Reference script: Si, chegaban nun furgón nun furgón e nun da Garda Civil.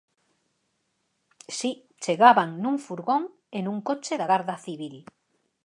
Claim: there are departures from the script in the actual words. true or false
true